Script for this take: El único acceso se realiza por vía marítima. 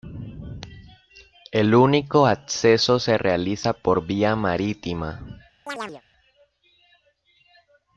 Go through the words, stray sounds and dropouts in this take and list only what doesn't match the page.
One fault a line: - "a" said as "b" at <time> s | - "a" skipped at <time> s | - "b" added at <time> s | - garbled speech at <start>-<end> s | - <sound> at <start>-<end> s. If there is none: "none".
- chirp at 5.7-6.0 s